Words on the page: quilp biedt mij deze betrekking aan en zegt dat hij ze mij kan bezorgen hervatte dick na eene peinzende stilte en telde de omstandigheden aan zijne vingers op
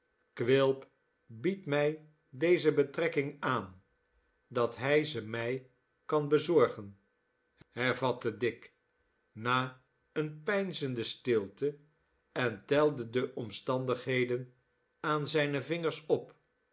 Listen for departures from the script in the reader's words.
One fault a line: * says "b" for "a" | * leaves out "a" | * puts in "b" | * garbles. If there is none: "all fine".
* leaves out "en zegt"